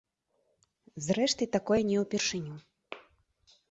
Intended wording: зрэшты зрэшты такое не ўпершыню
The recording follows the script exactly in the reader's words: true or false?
false